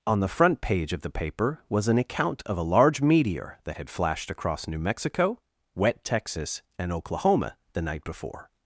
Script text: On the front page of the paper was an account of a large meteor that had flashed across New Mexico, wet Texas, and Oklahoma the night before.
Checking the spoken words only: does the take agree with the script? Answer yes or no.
yes